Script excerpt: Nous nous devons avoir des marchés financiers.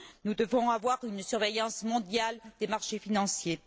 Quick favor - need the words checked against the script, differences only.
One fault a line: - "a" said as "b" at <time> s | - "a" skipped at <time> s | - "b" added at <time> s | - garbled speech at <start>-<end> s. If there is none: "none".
- "nous" skipped at 0.3 s
- "une surveillance mondiale" added at 1.0 s